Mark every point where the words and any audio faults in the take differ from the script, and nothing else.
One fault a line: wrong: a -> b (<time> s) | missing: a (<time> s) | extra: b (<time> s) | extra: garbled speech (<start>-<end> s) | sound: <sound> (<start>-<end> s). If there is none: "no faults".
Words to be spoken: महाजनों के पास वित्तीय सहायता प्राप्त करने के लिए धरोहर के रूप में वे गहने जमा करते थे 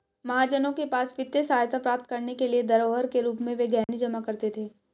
sound: dropout (3.8-3.9 s)